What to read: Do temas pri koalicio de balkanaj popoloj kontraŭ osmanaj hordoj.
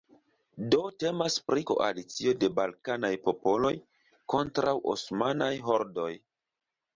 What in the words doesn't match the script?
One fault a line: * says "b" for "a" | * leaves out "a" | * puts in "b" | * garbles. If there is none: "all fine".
all fine